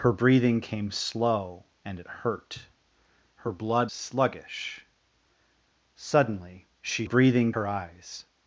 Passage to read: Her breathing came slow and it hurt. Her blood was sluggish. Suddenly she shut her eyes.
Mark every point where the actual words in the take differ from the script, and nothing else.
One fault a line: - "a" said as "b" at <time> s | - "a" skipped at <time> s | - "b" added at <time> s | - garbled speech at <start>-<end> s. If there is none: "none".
- "was" skipped at 3.9 s
- "shut" said as "breathing" at 7.0 s